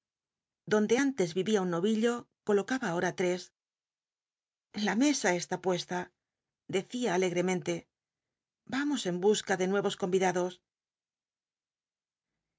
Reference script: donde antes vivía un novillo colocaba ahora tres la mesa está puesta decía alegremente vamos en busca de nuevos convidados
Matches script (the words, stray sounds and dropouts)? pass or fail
pass